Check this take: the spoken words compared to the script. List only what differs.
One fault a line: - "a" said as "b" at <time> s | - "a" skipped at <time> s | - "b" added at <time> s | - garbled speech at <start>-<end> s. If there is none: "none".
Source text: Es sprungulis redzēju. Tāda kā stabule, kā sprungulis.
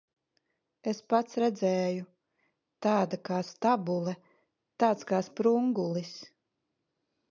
- "sprungulis" said as "pats" at 1.1 s
- "tāds" added at 4.8 s